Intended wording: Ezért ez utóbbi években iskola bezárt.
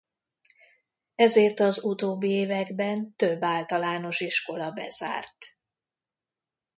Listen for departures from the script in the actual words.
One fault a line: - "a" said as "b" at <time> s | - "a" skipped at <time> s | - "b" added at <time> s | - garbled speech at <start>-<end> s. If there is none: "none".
- "ez" said as "az" at 1.6 s
- "több általános" added at 3.1 s